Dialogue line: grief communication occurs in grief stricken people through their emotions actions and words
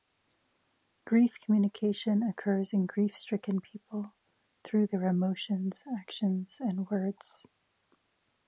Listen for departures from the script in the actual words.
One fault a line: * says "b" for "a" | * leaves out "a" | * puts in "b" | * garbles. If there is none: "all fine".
all fine